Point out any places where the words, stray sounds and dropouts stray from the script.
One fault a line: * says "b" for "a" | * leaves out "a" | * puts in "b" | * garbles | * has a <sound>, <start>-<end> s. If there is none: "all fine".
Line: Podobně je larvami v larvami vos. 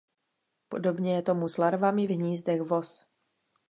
* puts in "tomu s"
* says "hnízdech" for "larvami"